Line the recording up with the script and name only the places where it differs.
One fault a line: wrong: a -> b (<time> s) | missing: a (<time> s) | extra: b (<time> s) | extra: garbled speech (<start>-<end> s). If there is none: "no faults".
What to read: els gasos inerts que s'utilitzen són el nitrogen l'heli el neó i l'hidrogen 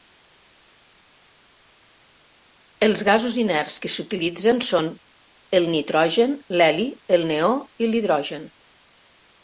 no faults